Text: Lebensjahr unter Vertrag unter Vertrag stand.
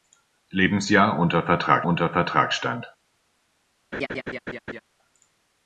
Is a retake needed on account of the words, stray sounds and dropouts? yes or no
yes